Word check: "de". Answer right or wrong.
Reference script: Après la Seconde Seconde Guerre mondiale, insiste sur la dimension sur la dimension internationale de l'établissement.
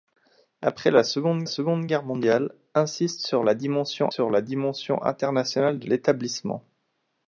right